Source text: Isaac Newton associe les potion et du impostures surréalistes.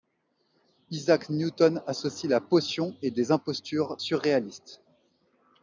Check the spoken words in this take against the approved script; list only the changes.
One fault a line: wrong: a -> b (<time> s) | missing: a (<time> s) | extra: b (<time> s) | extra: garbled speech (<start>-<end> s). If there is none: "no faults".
wrong: les -> la (2.3 s)
wrong: du -> des (3.1 s)